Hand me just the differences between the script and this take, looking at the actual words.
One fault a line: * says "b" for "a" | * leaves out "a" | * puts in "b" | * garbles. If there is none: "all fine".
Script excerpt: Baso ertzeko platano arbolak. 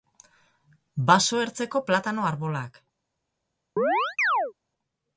all fine